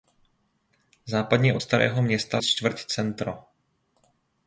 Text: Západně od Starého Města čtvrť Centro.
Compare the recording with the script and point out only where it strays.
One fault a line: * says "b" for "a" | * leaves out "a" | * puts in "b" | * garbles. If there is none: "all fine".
all fine